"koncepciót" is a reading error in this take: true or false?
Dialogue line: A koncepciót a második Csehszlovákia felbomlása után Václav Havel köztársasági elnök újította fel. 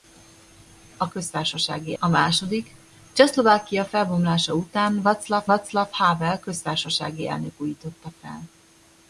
true